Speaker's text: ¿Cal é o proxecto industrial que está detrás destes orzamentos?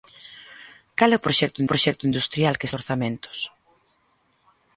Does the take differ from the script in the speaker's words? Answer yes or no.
yes